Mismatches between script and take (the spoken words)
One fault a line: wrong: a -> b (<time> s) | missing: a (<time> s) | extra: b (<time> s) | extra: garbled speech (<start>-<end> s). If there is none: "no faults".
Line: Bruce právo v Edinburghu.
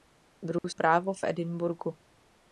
no faults